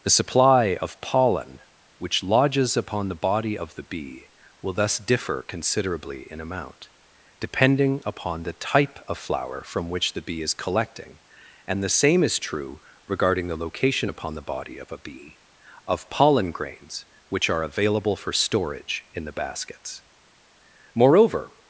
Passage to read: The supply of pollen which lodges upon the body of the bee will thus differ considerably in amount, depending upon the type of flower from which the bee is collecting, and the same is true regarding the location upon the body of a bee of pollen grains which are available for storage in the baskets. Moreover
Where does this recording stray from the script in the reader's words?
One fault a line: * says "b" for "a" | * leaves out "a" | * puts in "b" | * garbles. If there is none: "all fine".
all fine